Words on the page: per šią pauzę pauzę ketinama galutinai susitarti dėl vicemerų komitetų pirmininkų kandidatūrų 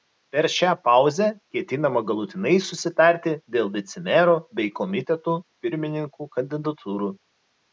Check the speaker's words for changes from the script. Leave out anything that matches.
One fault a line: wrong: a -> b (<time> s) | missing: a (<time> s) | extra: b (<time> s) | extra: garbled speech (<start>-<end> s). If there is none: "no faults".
missing: pauzę (1.2 s)
extra: bei (4.6 s)